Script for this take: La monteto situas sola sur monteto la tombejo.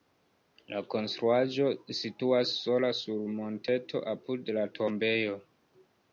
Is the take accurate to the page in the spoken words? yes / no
no